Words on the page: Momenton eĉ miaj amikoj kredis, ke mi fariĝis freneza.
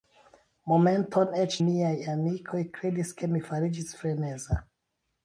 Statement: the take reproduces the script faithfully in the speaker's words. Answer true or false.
true